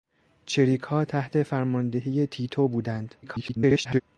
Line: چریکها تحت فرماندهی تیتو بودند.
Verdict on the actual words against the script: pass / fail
fail